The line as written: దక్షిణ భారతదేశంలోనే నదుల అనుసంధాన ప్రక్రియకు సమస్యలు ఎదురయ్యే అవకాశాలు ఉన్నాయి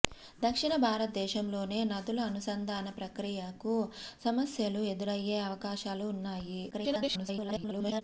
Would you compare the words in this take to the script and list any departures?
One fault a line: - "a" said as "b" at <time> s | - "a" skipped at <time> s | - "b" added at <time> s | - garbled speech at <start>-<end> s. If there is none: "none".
- garbled speech at 6.7-8.0 s